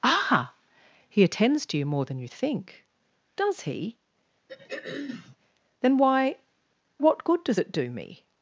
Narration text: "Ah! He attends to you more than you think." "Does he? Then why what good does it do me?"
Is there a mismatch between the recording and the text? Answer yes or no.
no